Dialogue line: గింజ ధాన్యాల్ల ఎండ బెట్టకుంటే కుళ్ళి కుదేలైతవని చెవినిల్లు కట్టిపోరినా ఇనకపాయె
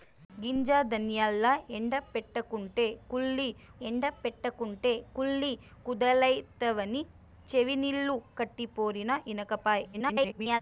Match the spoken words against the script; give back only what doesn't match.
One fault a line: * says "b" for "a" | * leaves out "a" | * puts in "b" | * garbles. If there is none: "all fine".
* puts in "ఎండ బెట్టకుంటే కుళ్ళి"
* garbles